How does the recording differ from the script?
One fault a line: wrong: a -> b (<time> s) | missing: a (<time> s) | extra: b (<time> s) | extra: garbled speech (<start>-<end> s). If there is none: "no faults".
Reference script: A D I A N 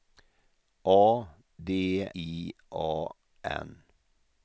no faults